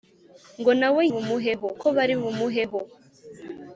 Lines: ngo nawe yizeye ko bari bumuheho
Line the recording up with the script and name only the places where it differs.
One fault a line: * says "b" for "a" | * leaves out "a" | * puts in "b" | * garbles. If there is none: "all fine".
* says "bumuheho" for "yizeye"